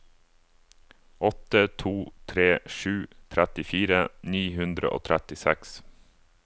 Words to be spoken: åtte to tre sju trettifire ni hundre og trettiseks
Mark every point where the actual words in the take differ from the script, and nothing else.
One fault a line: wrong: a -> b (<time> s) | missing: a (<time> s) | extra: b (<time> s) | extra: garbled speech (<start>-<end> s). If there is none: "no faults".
no faults